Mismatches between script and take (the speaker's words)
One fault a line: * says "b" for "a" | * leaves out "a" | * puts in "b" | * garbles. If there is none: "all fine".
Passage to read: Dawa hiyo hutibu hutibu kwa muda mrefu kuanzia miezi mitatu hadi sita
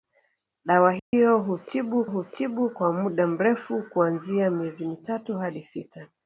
all fine